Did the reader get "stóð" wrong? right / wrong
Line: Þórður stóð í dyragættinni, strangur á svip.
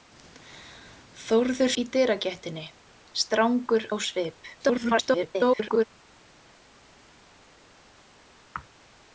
wrong